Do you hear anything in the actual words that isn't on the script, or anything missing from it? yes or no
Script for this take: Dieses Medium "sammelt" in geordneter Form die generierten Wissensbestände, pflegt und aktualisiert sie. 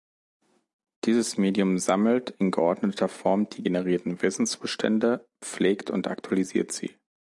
no